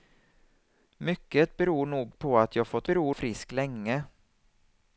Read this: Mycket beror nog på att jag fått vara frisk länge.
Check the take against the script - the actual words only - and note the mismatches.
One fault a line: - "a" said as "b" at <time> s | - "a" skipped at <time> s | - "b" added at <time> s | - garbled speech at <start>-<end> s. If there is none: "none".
- "vara" said as "beror" at 2.9 s